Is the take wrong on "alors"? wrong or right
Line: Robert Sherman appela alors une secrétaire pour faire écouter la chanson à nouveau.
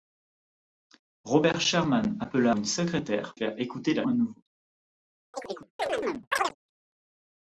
wrong